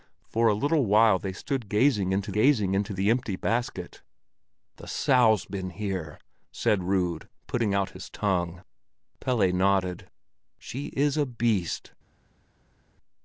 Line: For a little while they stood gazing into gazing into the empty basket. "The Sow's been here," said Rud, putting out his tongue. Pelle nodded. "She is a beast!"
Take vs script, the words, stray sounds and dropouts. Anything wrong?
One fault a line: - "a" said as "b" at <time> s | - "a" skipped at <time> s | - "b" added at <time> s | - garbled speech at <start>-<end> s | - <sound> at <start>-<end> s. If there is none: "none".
none